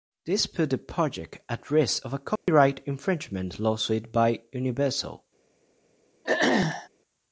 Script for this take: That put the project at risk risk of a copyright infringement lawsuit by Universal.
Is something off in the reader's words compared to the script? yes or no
yes